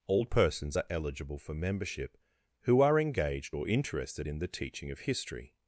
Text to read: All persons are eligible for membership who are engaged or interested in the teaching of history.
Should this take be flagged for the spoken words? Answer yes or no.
no